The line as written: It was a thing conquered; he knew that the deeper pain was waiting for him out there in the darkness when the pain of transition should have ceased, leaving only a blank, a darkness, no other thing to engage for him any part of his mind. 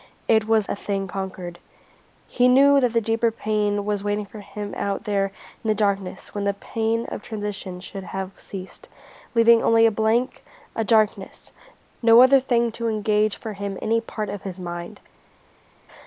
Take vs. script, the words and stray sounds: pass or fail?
pass